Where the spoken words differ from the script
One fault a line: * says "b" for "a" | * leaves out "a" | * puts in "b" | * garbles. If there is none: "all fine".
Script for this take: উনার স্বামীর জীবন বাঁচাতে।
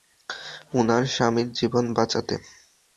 all fine